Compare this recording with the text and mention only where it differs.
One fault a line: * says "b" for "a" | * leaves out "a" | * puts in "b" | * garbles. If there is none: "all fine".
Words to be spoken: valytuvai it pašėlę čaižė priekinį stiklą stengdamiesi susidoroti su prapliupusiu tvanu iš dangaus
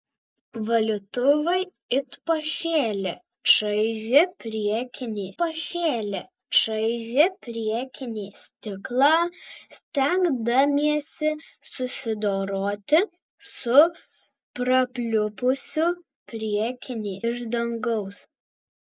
* puts in "pašėlę čaižė priekinį"
* says "priekinį" for "tvanu"